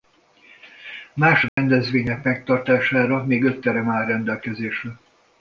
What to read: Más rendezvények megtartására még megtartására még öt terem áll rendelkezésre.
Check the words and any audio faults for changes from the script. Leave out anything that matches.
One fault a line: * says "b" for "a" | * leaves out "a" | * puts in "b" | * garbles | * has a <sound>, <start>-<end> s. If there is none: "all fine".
* has a dropout, 1.5-1.6 s
* leaves out "megtartására még"